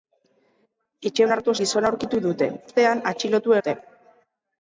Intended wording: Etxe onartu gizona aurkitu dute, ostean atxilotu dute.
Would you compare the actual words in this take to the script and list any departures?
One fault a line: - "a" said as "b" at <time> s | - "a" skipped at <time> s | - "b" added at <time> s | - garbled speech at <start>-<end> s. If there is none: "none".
none